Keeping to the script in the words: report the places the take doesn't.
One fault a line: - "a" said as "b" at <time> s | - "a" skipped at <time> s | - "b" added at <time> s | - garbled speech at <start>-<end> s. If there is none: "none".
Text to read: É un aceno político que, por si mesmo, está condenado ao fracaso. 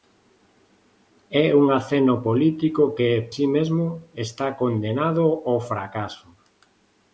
- "por" skipped at 3.1 s